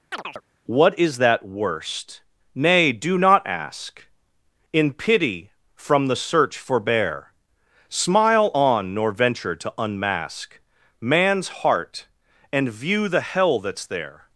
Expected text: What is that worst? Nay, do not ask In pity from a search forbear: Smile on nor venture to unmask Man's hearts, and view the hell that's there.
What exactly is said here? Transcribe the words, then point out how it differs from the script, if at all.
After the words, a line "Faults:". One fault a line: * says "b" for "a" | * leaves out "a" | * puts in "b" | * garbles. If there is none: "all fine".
What is that worst? Nay, do not ask In pity from the search forbear: Smile on nor venture to unmask Man's heart, and view the hell that's there.
Faults:
* says "the" for "a"
* says "heart" for "hearts"